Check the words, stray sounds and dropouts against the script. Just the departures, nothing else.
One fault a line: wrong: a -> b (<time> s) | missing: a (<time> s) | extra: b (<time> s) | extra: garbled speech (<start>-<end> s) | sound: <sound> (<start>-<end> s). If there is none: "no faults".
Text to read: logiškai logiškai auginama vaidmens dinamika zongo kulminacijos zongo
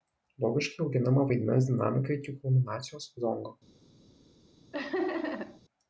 missing: logiškai (0.8 s)
wrong: zongo -> iki (2.2 s)
sound: laugh (4.7-5.6 s)